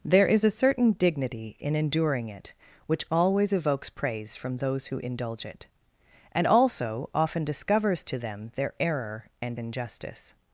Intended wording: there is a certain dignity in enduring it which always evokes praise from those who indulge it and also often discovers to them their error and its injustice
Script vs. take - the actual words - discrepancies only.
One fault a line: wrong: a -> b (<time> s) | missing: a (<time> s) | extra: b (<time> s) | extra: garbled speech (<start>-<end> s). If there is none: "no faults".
missing: its (9.6 s)